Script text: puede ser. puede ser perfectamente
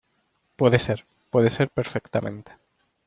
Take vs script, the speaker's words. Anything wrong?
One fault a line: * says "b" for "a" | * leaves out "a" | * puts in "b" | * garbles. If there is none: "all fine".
all fine